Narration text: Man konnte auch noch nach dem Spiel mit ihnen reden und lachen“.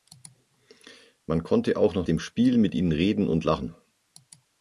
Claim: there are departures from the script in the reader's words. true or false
true